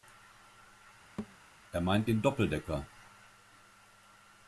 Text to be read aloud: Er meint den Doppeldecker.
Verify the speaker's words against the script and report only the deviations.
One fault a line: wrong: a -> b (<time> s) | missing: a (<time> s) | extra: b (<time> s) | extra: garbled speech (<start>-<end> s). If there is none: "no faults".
no faults